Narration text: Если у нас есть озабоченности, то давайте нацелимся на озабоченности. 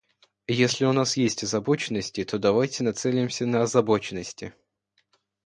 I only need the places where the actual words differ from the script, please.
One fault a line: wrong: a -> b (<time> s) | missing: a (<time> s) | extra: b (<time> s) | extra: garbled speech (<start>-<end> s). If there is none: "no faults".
no faults